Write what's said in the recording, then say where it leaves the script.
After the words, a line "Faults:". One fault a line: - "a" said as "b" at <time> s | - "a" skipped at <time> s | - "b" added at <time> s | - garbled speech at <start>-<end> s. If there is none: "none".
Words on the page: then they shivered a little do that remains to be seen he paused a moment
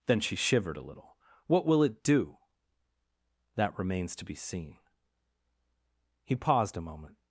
then she shivered a little what will it do that remains to be seen he paused a moment
Faults:
- "they" said as "she" at 0.2 s
- "what will it" added at 1.4 s